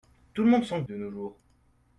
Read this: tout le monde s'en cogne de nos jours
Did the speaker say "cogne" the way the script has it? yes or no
no